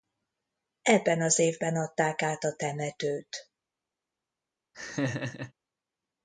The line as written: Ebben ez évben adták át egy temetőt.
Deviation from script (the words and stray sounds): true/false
true